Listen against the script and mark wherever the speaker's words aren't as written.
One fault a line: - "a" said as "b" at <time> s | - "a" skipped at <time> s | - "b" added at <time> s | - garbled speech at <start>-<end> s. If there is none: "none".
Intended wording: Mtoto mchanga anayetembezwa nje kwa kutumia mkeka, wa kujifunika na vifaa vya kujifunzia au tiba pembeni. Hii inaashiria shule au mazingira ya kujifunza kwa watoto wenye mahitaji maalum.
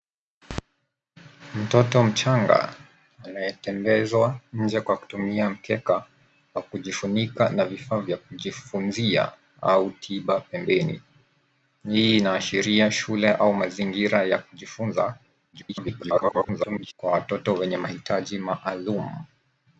- garbled speech at 15.5-16.9 s